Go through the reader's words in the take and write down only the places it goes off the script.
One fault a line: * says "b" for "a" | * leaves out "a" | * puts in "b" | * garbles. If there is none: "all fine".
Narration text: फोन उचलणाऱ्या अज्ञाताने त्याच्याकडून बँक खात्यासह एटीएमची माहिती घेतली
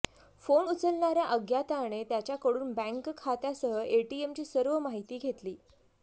* puts in "सर्व"